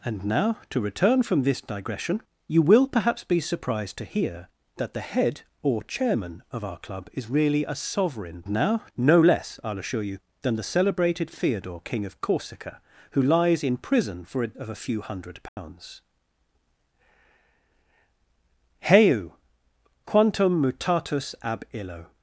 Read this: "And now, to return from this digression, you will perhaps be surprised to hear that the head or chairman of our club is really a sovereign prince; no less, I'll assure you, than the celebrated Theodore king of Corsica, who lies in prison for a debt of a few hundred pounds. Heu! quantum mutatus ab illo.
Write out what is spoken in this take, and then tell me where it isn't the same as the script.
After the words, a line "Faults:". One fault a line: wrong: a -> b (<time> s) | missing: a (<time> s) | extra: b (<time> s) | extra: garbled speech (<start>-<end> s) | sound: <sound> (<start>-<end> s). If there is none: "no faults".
"And now, to return from this digression, you will perhaps be surprised to hear that the head or chairman of our club is really a sovereign now; no less, I'll assure you, than the celebrated Theodore king of Corsica, who lies in prison for a of a few hundred pounds. Heu! quantum mutatus ab illo.
Faults:
wrong: prince -> now (8.5 s)
missing: debt (14.5 s)
sound: dropout (15.5-15.6 s)